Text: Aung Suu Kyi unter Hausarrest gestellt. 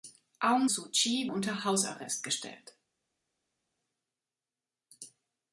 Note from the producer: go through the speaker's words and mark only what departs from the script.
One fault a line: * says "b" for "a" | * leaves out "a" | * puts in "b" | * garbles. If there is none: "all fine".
all fine